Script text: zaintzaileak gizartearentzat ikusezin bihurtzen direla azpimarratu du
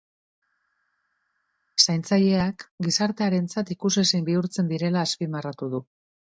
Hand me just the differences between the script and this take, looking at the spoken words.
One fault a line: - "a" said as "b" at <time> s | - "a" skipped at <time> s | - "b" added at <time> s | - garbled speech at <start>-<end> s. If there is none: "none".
none